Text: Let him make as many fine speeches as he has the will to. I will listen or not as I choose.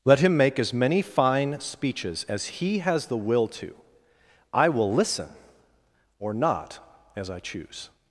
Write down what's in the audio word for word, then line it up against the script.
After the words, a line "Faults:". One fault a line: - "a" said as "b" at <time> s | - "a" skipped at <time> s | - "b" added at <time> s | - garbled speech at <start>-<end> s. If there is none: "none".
Let him make as many fine speeches as he has the will to. I will listen or not as I choose.
Faults:
none